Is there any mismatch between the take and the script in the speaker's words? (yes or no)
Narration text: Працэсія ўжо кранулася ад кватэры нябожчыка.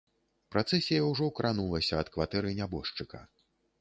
no